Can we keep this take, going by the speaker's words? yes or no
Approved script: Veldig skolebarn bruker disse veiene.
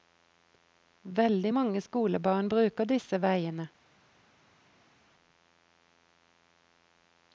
no